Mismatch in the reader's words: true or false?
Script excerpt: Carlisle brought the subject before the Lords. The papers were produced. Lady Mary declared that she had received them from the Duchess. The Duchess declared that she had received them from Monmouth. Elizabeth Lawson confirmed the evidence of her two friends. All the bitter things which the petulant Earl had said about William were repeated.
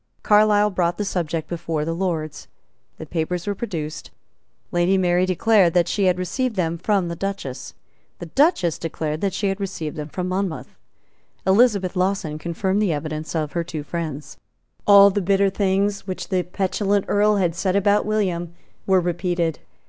false